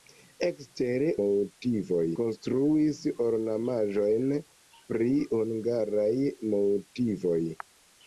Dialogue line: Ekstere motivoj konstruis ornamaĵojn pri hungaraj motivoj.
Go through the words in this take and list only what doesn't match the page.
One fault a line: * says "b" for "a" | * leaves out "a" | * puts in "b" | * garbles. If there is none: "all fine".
all fine